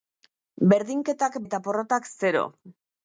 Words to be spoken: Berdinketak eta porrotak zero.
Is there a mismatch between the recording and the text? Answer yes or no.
no